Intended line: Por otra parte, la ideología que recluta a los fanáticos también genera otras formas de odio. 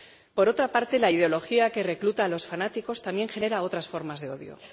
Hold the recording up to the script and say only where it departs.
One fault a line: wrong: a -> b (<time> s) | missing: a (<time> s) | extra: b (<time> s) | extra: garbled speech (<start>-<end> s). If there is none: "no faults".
no faults